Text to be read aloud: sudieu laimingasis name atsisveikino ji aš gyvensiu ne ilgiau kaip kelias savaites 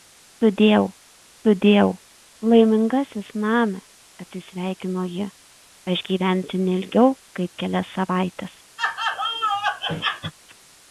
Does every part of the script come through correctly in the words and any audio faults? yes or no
no